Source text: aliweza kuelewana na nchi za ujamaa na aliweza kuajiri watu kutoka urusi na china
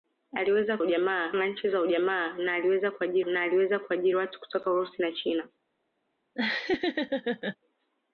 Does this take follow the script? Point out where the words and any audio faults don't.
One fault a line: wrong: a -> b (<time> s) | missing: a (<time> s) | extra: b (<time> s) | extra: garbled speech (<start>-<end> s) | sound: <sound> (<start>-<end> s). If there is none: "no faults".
wrong: kuelewana -> ujamaa (0.8 s)
extra: na aliweza kuajiri (3.3 s)
sound: laugh (6.3-7.6 s)